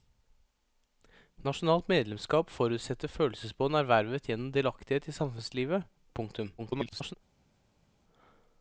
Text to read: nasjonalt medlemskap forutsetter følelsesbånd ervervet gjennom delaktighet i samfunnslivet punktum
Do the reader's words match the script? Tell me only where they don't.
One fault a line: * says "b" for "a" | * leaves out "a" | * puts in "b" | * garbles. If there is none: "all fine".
* garbles